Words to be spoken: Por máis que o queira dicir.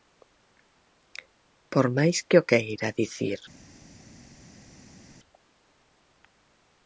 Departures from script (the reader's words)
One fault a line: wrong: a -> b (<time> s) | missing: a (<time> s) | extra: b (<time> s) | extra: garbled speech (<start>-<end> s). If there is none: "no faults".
no faults